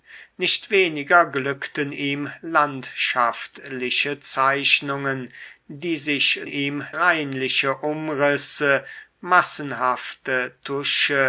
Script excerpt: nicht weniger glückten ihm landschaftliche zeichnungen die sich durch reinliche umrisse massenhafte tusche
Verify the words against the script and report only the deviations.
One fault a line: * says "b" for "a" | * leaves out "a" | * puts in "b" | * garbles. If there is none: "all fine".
* says "ihm" for "durch"